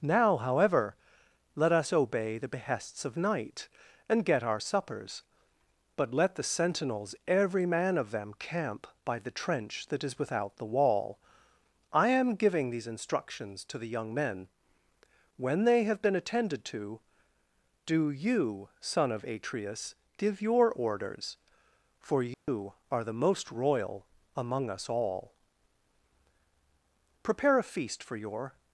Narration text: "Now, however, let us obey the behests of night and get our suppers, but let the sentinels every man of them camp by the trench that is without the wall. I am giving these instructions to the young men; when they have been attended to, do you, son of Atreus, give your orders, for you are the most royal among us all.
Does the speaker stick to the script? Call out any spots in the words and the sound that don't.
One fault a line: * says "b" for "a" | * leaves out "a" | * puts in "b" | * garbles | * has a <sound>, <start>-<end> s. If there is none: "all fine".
* has a dropout, 22.3-22.5 s
* puts in "Prepare a feast for your"